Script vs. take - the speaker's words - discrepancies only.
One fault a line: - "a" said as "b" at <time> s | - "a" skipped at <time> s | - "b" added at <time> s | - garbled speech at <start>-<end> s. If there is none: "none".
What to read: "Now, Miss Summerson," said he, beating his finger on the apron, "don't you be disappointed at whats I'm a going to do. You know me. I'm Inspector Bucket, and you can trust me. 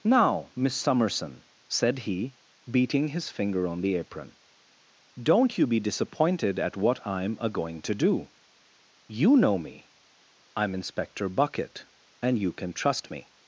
- "whats" said as "what" at 6.8 s